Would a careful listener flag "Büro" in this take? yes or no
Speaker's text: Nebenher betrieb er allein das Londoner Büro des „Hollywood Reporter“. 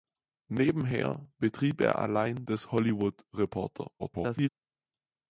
yes